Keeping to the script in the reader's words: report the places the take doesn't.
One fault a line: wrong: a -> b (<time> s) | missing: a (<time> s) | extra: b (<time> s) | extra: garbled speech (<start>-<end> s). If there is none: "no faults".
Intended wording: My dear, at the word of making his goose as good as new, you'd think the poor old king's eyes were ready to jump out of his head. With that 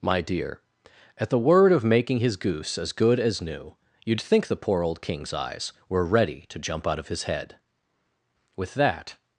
no faults